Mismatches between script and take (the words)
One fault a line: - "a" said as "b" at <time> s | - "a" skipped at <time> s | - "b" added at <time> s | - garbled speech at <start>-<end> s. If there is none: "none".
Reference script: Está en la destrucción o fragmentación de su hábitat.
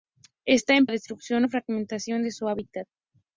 none